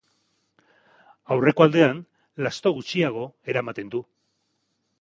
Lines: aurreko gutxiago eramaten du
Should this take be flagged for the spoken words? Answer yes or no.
yes